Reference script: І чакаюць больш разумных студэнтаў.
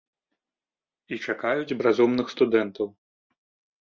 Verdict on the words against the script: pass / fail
fail